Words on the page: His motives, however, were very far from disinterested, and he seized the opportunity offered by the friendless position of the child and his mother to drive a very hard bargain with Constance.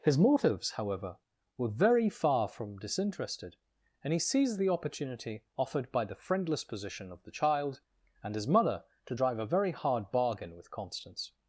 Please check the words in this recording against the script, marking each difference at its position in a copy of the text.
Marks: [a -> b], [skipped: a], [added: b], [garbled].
His motives, however, were very far from disinterested, and he seized the opportunity offered by the friendless position of the child and his mother to drive a very hard bargain with Constance.